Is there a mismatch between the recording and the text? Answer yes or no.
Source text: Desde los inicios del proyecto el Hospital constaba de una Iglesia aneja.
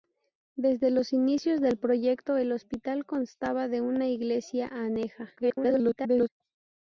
yes